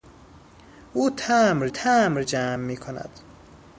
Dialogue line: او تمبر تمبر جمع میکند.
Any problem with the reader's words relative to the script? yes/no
no